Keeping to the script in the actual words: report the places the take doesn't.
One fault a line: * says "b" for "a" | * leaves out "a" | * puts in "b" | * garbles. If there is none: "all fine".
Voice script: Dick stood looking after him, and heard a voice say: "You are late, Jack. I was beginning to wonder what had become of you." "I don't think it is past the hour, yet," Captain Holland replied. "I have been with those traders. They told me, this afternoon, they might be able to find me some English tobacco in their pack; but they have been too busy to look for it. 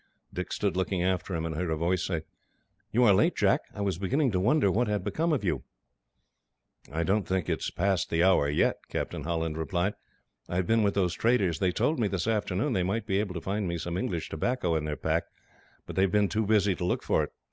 all fine